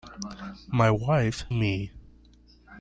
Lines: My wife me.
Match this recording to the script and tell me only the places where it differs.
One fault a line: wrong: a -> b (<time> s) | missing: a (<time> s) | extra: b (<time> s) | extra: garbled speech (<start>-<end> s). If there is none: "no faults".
no faults